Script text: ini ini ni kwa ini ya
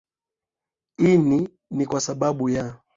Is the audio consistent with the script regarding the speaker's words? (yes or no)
no